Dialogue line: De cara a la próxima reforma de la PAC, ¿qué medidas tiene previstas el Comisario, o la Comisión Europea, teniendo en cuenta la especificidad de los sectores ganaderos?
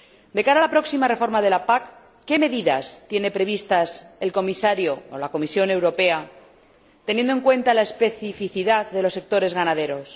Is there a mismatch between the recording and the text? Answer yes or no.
no